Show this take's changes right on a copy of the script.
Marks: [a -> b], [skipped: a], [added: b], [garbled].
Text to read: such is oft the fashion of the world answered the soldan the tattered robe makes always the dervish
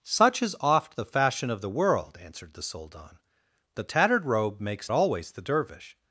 such is oft the fashion of the world answered the soldan the tattered robe makes always the dervish